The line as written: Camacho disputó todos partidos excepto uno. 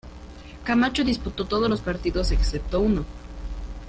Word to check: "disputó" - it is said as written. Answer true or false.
true